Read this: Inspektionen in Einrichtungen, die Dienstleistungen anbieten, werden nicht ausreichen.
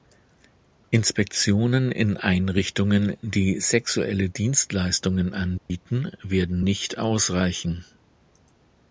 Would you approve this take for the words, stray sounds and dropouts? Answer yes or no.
no